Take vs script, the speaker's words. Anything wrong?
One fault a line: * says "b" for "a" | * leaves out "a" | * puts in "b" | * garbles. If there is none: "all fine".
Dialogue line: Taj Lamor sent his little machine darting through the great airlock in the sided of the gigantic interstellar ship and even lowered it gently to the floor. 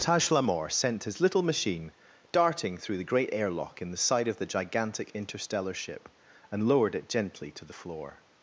* says "side" for "sided"
* leaves out "even"